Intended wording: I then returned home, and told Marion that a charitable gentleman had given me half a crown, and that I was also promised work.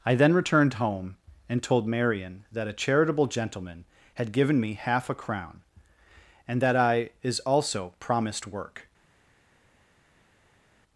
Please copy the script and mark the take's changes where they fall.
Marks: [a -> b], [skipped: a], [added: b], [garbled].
I then returned home, and told Marion that a charitable gentleman had given me half a crown, and that I [was -> is] also promised work.